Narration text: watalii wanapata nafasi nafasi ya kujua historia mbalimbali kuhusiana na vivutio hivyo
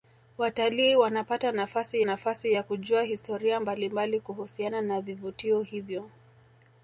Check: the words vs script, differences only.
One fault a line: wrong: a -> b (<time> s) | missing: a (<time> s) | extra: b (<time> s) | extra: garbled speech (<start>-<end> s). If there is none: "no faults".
no faults